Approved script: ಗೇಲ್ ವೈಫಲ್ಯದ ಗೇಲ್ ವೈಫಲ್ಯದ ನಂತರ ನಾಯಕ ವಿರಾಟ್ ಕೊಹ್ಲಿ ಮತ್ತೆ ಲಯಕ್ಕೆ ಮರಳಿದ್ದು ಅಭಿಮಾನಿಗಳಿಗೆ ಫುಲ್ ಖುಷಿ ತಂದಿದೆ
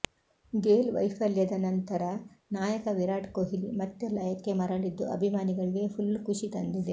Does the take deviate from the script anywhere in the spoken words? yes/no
yes